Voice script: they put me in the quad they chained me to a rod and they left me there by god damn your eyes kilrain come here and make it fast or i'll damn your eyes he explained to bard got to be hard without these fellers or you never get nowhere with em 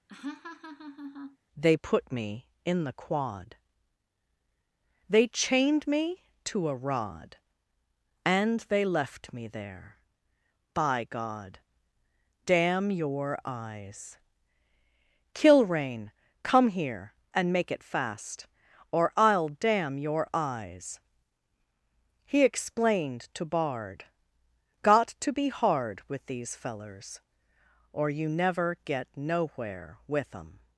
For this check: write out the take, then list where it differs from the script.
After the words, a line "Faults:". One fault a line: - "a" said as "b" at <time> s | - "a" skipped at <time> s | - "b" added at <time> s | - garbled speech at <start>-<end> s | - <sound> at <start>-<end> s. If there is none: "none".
they put me in the quad they chained me to a rod and they left me there by god damn your eyes kilrain come here and make it fast or i'll damn your eyes he explained to bard got to be hard with these fellers or you never get nowhere with em
Faults:
- laugh at 0.1-1.4 s
- "without" said as "with" at 26.1 s